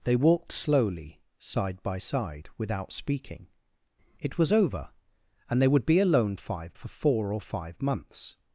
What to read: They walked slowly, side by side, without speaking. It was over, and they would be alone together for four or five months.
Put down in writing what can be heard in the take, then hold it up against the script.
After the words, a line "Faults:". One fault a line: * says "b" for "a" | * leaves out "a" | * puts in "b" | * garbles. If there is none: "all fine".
They walked slowly, side by side, without speaking. It was over, and they would be alone five for four or five months.
Faults:
* says "five" for "together"